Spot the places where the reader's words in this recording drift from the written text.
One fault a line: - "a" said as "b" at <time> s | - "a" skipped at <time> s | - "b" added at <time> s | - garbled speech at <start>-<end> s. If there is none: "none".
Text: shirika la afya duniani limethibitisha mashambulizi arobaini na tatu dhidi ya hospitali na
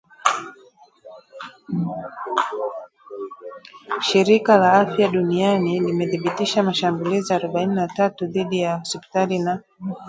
none